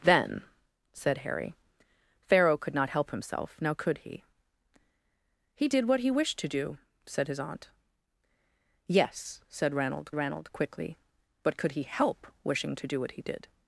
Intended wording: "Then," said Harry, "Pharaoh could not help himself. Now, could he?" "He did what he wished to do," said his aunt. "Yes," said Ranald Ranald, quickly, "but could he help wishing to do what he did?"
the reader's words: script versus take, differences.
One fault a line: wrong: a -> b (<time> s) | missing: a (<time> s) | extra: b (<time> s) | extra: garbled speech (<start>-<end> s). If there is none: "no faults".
no faults